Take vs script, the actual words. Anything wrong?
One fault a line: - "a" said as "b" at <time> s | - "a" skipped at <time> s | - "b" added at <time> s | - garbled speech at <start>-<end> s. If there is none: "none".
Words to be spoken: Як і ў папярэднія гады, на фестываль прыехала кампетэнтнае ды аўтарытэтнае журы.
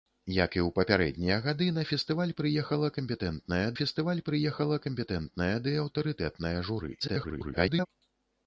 - "фестываль прыехала кампетэнтнае" added at 3.8 s
- garbled speech at 7.0-7.9 s